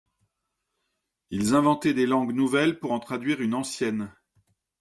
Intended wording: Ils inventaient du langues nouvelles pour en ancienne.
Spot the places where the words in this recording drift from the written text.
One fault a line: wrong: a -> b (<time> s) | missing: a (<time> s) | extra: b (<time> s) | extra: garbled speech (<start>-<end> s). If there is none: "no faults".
wrong: du -> des (1.9 s)
extra: traduire une (3.0 s)